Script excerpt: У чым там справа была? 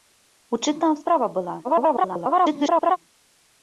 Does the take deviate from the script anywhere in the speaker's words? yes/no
yes